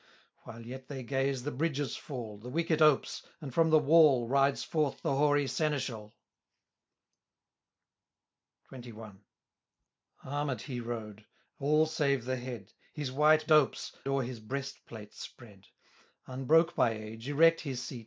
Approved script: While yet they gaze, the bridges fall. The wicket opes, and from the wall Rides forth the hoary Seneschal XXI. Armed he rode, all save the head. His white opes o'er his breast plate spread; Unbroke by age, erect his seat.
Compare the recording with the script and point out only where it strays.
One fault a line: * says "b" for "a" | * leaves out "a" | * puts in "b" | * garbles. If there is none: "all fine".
all fine